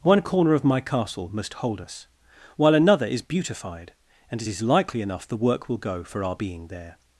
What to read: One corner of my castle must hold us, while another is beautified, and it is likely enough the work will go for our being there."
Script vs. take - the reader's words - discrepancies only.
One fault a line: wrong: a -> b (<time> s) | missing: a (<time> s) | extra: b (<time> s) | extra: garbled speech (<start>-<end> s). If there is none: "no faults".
no faults